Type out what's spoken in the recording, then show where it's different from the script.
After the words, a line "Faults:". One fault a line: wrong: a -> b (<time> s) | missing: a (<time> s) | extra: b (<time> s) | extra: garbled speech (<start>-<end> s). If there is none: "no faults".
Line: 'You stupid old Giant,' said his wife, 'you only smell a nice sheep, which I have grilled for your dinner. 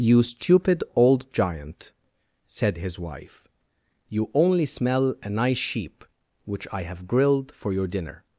'You stupid old Giant,' said his wife, 'you only smell a nice sheep, which I have grilled for your dinner.
Faults:
no faults